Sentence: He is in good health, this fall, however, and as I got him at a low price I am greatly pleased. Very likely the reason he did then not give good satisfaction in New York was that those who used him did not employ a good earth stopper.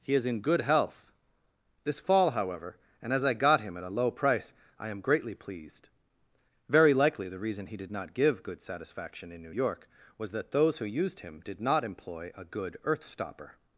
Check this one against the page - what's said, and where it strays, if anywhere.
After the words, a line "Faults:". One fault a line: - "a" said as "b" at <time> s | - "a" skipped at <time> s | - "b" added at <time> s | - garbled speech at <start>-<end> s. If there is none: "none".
He is in good health, this fall, however, and as I got him at a low price I am greatly pleased. Very likely the reason he did not give good satisfaction in New York was that those who used him did not employ a good earth stopper.
Faults:
- "then" skipped at 7.9 s